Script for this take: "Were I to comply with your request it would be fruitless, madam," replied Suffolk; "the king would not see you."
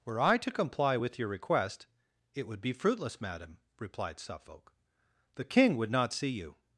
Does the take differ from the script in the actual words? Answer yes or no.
no